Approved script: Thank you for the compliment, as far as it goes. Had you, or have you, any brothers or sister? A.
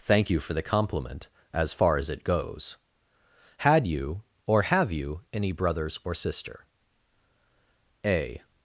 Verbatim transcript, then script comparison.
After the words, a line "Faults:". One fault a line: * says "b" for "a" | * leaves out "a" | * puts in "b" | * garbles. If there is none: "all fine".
Thank you for the compliment, as far as it goes. Had you, or have you, any brothers or sister? A.
Faults:
all fine